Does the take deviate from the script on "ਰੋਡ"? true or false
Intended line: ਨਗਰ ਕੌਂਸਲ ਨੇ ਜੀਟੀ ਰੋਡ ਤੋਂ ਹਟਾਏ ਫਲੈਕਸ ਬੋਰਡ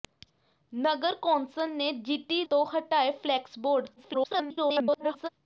true